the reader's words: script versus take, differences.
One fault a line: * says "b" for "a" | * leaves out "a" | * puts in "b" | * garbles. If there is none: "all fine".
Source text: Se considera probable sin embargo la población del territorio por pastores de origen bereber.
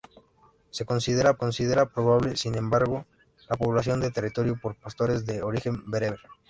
* puts in "considera"